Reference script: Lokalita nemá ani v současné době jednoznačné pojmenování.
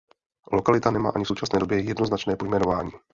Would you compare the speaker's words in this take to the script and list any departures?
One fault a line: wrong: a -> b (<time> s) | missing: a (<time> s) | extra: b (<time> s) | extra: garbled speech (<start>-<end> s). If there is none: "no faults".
no faults